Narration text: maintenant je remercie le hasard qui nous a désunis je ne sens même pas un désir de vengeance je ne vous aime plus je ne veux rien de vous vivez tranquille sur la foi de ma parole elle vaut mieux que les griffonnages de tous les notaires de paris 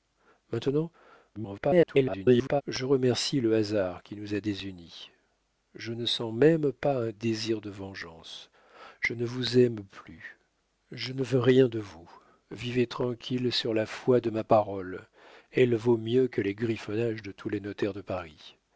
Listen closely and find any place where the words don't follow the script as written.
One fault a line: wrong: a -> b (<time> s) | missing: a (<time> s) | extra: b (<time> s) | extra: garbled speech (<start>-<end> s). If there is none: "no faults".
extra: garbled speech (1.3-2.6 s)